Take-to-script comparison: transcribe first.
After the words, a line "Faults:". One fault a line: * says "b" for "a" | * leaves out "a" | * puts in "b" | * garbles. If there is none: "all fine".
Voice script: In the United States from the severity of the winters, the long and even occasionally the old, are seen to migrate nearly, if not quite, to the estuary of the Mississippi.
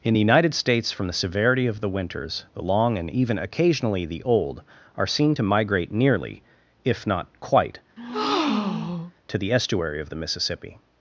In the United States from the severity of the winters, the long and even occasionally the old, are seen to migrate nearly, if not quite, to the estuary of the Mississippi.
Faults:
all fine